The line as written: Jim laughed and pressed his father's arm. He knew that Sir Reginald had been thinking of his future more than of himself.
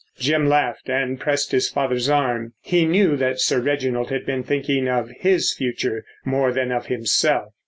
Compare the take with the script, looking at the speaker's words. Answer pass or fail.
pass